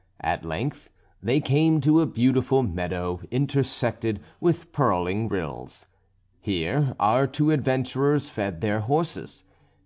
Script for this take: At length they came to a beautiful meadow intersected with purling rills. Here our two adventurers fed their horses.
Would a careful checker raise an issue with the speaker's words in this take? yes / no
no